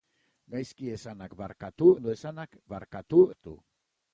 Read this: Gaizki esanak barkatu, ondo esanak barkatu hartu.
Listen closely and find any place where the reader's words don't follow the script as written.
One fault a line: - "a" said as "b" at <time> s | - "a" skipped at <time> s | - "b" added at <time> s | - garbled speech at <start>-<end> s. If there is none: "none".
none